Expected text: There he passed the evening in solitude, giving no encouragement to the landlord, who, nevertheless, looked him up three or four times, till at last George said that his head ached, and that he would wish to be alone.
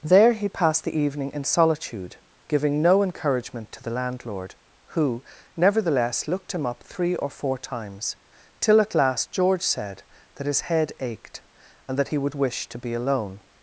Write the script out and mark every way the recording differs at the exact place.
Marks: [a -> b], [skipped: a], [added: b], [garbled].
There he passed the evening in solitude, giving no encouragement to the landlord, who, nevertheless, looked him up three or four times, till at last George said that his head ached, and that he would wish to be alone.